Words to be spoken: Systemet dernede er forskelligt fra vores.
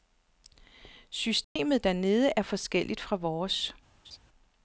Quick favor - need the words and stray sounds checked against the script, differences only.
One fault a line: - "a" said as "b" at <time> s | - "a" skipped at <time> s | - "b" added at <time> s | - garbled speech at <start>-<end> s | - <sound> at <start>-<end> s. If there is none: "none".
- dropout at 1.4-1.6 s
- laugh at 4.0-4.2 s